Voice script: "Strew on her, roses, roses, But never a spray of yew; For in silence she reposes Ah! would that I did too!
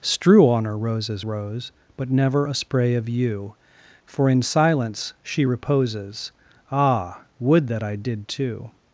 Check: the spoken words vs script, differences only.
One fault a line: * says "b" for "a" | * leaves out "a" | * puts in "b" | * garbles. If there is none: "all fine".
* says "rose" for "roses"